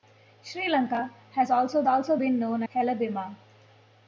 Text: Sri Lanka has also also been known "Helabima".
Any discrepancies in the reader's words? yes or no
no